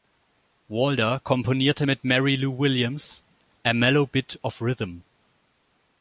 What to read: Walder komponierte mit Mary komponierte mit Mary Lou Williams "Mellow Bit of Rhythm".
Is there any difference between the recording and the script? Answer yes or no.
yes